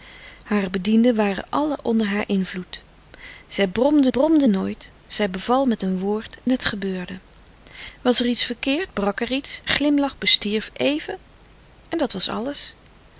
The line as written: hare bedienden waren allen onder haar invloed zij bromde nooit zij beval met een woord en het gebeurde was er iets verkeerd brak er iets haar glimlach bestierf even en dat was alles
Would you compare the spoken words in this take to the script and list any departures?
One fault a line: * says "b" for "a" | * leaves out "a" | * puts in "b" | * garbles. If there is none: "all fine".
* puts in "bromde"
* leaves out "en"
* leaves out "haar"